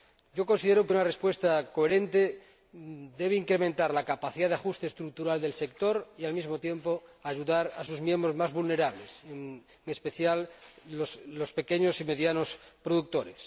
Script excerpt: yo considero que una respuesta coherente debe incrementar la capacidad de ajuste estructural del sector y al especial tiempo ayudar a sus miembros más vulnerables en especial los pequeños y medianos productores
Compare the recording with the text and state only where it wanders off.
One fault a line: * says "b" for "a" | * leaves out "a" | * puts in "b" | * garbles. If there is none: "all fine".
* says "mismo" for "especial"